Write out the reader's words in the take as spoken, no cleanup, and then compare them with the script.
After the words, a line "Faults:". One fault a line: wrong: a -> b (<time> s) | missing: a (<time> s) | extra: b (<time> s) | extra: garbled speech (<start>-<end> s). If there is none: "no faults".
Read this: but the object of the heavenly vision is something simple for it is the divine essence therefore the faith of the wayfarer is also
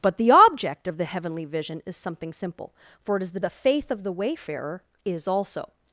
but the object of the heavenly vision is something simple for it is the the faith of the wayfarer is also
Faults:
missing: divine essence therefore (3.4 s)